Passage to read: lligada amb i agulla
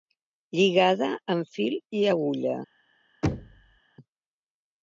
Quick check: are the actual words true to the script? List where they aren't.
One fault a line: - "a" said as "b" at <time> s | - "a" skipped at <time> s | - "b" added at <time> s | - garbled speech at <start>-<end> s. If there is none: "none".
- "fil" added at 1.6 s